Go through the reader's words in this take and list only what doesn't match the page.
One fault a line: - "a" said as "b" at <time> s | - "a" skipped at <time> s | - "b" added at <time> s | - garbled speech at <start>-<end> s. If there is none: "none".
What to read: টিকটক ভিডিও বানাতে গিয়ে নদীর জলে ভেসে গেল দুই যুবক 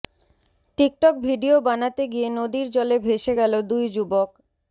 none